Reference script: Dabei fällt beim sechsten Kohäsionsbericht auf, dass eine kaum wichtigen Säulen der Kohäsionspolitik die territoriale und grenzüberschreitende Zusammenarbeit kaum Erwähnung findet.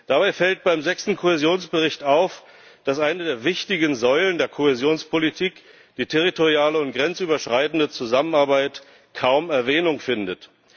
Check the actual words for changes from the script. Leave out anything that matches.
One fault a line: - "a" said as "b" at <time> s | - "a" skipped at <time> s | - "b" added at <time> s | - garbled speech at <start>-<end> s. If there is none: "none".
- "kaum" said as "der" at 3.2 s